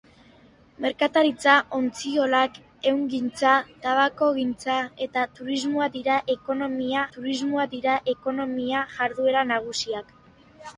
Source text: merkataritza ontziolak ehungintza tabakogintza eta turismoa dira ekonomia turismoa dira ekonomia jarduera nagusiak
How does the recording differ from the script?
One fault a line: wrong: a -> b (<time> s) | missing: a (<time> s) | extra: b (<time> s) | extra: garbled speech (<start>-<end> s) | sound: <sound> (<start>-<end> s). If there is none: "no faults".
no faults